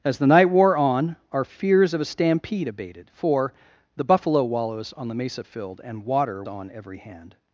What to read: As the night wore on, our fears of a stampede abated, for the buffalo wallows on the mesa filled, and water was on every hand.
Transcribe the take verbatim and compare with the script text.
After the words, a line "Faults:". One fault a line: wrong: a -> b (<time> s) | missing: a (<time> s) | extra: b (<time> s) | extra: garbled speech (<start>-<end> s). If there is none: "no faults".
As the night wore on, our fears of a stampede abated, for the buffalo wallows on the mesa filled, and water on every hand.
Faults:
missing: was (6.4 s)